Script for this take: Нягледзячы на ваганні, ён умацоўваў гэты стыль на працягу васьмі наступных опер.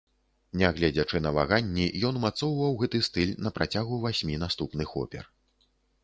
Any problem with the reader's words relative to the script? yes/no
no